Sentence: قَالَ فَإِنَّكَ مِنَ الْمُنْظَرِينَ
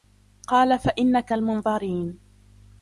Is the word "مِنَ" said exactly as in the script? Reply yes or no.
no